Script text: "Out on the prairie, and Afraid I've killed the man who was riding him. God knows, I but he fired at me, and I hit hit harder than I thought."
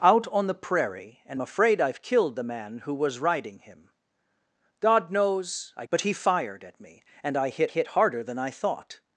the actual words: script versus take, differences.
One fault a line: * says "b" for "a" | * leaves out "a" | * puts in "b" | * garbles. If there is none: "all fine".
all fine